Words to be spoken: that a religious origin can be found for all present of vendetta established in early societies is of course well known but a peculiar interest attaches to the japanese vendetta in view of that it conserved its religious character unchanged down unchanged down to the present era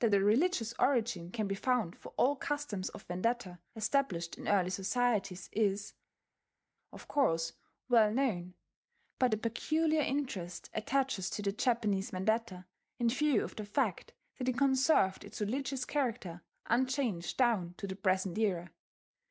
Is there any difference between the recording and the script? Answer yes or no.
yes